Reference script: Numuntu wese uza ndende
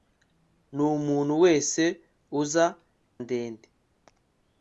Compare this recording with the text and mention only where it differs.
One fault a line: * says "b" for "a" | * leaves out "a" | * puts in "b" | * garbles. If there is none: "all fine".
all fine